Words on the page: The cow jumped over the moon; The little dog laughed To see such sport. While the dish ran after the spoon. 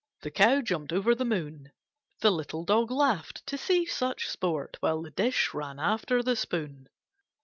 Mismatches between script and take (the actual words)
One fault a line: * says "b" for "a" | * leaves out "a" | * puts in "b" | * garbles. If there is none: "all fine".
all fine